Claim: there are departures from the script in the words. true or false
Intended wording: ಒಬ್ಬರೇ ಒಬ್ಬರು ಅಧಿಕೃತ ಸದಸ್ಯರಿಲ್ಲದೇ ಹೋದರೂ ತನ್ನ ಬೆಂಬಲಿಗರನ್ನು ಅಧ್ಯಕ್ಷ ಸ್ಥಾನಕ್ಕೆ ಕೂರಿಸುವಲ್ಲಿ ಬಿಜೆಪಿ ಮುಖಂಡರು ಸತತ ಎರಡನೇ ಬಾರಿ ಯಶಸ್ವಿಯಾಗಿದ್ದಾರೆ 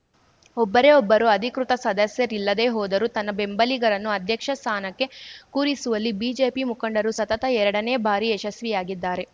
false